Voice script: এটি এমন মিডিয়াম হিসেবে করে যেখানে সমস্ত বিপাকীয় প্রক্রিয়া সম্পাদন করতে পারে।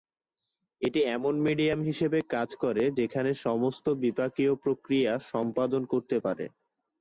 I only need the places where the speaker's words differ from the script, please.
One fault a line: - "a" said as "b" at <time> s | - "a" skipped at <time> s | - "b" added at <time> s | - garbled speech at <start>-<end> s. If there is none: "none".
- "কাজ" added at 2.3 s